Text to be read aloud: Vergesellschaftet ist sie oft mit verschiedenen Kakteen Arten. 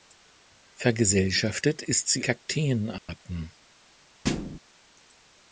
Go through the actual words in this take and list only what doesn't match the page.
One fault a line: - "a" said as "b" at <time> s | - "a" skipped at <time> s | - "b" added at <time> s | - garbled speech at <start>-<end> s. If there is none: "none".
- "oft mit verschiedenen" skipped at 2.2 s